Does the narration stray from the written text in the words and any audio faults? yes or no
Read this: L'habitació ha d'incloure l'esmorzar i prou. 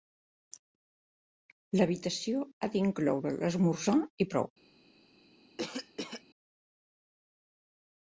yes